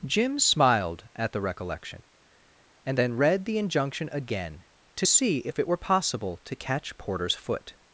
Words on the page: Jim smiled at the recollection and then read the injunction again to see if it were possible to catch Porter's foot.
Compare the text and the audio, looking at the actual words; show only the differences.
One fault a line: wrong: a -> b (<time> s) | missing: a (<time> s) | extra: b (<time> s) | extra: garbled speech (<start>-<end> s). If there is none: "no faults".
no faults